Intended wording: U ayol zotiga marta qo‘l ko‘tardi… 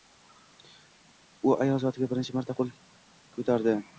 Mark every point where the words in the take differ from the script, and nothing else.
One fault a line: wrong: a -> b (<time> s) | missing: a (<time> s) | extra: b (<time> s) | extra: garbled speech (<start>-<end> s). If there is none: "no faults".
extra: birinchi (2.1 s)